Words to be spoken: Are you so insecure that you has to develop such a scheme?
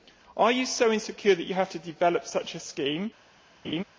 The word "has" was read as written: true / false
false